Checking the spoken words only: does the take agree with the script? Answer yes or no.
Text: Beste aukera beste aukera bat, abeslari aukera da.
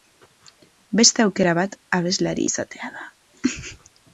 no